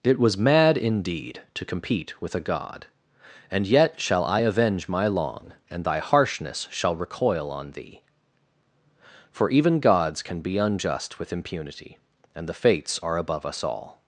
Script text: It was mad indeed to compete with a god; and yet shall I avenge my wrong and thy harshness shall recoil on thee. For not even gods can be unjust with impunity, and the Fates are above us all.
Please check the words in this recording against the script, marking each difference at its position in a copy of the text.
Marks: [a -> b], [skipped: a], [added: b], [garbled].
It was mad indeed to compete with a god; and yet shall I avenge my [wrong -> long] and thy harshness shall recoil on thee. For [skipped: not] even gods can be unjust with impunity, and the Fates are above us all.